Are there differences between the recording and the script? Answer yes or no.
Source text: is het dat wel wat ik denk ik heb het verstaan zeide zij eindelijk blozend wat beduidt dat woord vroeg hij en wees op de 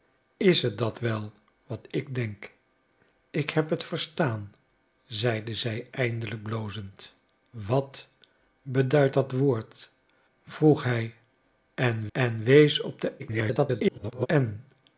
yes